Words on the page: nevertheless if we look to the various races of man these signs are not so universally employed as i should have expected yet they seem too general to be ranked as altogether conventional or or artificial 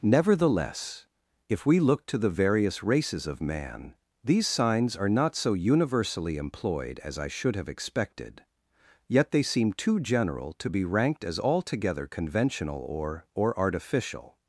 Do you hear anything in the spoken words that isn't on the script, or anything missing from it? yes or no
no